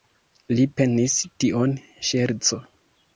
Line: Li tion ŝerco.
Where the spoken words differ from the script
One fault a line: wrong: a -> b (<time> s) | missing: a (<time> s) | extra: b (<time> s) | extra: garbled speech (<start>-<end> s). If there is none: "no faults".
extra: penis (0.8 s)